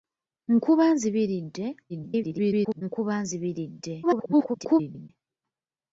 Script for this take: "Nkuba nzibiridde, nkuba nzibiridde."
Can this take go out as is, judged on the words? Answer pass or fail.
fail